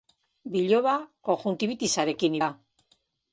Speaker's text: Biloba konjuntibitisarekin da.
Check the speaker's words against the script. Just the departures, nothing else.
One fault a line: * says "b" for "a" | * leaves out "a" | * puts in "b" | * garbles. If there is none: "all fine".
all fine